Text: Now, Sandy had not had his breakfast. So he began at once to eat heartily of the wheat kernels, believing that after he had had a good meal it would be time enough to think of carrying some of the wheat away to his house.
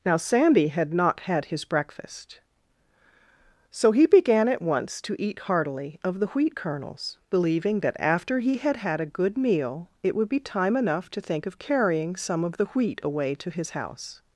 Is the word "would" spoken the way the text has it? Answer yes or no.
yes